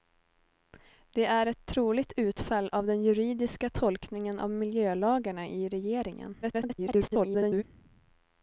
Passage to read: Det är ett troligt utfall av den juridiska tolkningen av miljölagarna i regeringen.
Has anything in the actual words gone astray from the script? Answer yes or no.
yes